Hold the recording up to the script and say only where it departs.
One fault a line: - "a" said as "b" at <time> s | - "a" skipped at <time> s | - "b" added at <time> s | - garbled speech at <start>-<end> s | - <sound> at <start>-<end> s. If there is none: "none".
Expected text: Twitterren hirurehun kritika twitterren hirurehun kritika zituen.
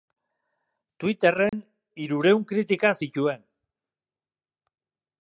- dropout at 1.5-1.5 s
- "twitterren hirurehun kritika" skipped at 2.9 s